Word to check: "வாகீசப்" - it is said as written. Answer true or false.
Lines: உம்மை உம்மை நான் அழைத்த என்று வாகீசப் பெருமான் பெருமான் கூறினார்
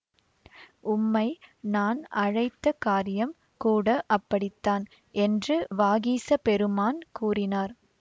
true